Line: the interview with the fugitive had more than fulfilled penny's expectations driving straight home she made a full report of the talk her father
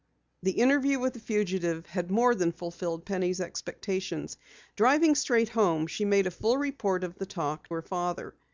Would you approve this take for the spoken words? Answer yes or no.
yes